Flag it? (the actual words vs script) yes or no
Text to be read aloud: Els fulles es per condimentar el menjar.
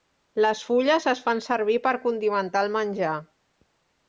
yes